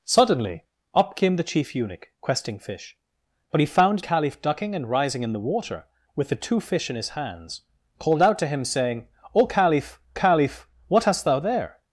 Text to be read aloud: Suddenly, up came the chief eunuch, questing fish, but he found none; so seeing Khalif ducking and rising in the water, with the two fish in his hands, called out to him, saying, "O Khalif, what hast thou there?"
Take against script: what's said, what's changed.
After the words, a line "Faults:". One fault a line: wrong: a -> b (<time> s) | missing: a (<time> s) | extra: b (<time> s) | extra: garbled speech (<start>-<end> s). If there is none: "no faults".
Suddenly, up came the chief eunuch, questing fish, but he found Khalif ducking and rising in the water, with the two fish in his hands, called out to him, saying, "O Khalif Khalif, what hast thou there?"
Faults:
missing: none so seeing (4.0 s)
extra: Khalif (10.1 s)